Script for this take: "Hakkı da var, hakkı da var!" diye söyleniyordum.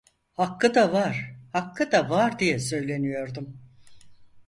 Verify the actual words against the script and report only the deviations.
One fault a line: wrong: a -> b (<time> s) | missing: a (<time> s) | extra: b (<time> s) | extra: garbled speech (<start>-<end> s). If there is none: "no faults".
no faults